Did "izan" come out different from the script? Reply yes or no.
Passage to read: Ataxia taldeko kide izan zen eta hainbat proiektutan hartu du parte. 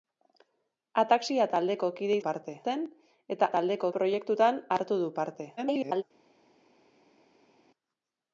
yes